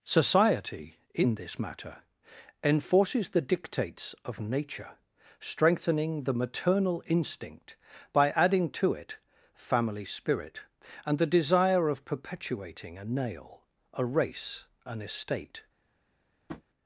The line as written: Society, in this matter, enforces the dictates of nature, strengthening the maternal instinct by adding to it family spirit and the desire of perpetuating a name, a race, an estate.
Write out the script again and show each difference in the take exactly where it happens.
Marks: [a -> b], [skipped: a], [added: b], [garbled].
Society, in this matter, enforces the dictates of nature, strengthening the maternal instinct by adding to it family spirit and the desire of perpetuating a [name, -> nail] a race, an estate.